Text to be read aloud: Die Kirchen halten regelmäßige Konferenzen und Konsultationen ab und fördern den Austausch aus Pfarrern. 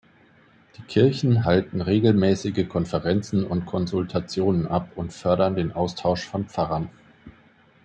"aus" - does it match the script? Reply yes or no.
no